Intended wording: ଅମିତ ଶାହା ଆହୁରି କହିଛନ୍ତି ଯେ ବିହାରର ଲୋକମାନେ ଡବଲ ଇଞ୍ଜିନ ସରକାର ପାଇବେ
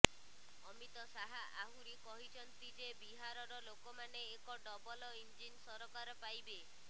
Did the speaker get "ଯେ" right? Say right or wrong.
right